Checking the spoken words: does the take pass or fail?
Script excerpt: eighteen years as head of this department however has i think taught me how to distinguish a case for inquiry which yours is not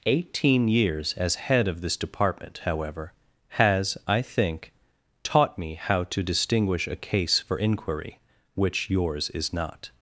pass